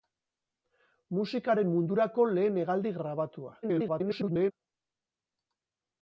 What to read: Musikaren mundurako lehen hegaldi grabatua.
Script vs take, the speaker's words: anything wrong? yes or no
yes